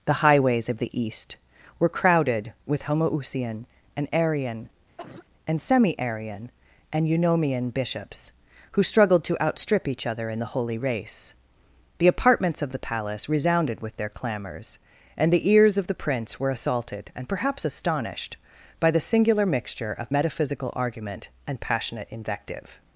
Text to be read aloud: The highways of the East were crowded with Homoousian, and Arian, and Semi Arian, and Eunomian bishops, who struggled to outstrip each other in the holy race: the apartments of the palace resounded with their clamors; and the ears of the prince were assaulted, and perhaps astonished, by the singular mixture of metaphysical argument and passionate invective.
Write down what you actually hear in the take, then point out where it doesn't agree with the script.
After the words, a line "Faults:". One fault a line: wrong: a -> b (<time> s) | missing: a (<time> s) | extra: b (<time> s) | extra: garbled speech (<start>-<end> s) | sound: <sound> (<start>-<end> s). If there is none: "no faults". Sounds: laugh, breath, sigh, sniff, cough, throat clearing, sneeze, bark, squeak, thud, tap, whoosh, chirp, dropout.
The highways of the East were crowded with Homoousian, and Arian, and Semi Arian, and Eunomian bishops, who struggled to outstrip each other in the holy race: the apartments of the palace resounded with their clamors; and the ears of the prince were assaulted, and perhaps astonished, by the singular mixture of metaphysical argument and passionate invective.
Faults:
sound: cough (5.0-5.3 s)